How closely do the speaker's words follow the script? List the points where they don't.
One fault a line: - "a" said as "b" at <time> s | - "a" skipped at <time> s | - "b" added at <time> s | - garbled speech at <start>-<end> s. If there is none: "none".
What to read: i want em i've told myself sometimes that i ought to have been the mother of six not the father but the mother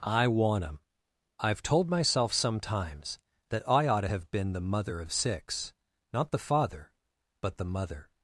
none